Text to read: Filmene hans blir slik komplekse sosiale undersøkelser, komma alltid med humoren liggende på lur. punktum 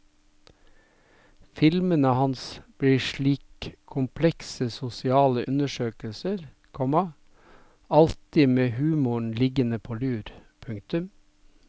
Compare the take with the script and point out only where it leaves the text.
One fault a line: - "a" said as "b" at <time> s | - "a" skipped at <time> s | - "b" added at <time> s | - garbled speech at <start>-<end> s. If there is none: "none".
none